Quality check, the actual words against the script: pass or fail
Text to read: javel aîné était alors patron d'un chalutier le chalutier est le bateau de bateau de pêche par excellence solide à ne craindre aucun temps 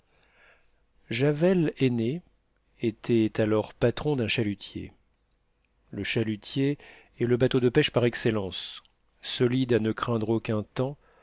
fail